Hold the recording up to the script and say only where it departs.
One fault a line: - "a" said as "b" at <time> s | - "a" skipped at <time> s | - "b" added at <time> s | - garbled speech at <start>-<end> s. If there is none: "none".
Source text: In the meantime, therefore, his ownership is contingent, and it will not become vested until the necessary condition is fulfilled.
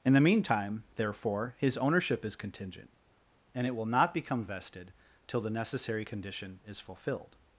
- "until" said as "till" at 5.3 s